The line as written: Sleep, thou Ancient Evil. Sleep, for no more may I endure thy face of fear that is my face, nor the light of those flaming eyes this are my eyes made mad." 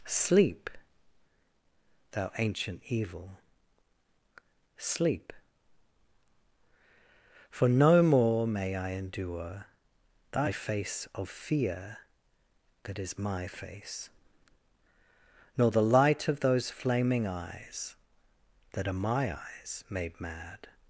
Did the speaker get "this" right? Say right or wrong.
wrong